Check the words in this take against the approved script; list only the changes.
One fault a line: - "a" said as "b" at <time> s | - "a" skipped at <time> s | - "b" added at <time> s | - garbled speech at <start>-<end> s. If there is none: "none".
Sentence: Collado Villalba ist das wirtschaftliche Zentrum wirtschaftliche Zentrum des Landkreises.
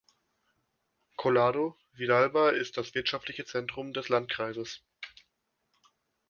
- "wirtschaftliche Zentrum" skipped at 3.9 s